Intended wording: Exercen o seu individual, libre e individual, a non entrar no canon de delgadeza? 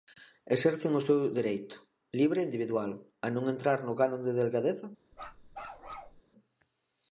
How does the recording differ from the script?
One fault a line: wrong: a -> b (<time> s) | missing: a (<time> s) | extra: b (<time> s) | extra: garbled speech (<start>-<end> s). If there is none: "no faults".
wrong: individual -> dereito (1.4 s)